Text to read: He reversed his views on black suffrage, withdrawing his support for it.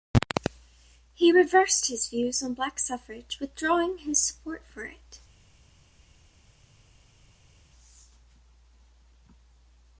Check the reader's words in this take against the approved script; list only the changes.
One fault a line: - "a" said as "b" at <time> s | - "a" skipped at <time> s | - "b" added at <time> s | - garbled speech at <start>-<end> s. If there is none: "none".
none